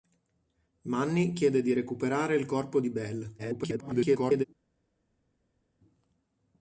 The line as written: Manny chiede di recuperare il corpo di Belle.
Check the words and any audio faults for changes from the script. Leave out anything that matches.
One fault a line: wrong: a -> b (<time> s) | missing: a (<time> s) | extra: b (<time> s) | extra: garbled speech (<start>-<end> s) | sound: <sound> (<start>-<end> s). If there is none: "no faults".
extra: garbled speech (3.4-4.4 s)